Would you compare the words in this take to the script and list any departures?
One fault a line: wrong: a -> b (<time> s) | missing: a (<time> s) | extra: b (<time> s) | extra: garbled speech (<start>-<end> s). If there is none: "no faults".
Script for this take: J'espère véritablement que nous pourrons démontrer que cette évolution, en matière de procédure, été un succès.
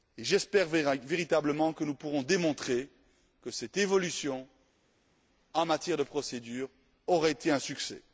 extra: aura (7.1 s)